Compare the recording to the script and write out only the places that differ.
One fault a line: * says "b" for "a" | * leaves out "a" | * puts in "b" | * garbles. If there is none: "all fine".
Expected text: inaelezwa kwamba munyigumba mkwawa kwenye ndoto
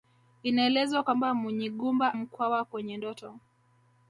all fine